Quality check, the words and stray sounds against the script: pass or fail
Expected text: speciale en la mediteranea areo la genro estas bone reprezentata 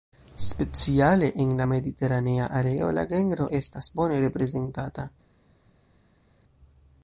pass